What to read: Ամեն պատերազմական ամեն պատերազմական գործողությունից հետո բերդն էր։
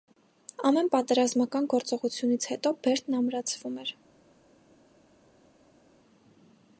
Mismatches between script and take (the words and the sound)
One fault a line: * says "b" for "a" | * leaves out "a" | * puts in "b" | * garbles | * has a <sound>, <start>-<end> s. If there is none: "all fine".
* leaves out "ամեն պատերազմական"
* puts in "ամրացվում"